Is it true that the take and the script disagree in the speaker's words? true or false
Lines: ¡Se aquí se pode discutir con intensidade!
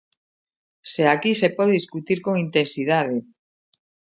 false